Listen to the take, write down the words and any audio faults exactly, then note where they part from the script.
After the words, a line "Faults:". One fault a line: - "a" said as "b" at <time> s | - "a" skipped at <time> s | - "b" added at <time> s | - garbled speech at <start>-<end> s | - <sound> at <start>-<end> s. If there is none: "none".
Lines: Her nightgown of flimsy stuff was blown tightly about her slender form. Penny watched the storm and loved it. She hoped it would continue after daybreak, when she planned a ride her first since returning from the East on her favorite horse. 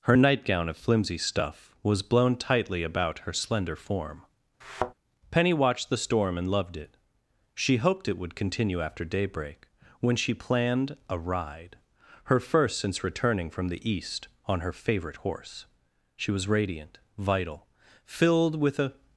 Her nightgown of flimsy stuff was blown tightly about her slender form. Penny watched the storm and loved it. She hoped it would continue after daybreak, when she planned a ride her first since returning from the East on her favorite horse. She was radiant, vital, filled with a
Faults:
- thud at 4.6-4.9 s
- "She was radiant vital filled with a" added at 16.1 s